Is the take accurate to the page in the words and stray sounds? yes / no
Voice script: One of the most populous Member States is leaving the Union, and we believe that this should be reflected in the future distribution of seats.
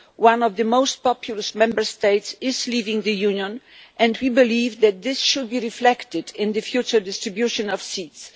yes